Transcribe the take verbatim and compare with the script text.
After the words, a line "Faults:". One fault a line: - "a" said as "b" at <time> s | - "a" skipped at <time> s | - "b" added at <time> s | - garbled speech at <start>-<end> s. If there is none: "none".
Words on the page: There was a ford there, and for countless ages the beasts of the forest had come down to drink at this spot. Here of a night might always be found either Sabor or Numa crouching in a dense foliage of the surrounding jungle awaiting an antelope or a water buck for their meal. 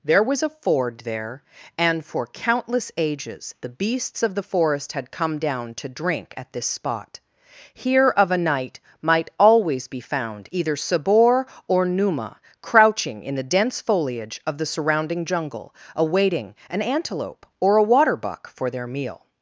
There was a ford there, and for countless ages the beasts of the forest had come down to drink at this spot. Here of a night might always be found either Sabor or Numa crouching in the dense foliage of the surrounding jungle awaiting an antelope or a water buck for their meal.
Faults:
- "a" said as "the" at 13.3 s